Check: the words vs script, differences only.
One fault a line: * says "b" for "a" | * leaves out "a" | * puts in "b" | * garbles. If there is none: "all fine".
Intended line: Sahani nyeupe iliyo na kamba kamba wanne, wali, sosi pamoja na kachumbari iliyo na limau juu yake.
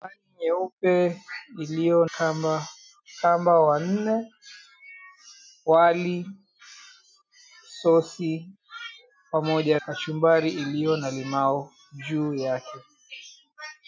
* leaves out "na"
* leaves out "na"